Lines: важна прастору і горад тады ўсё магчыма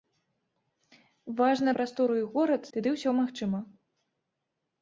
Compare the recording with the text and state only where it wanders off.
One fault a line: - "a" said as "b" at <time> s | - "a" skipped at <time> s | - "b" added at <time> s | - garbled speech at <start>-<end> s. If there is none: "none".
none